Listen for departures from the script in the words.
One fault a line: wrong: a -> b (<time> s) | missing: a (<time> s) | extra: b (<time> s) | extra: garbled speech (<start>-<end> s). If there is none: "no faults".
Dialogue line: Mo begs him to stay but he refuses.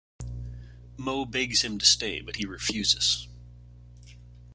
no faults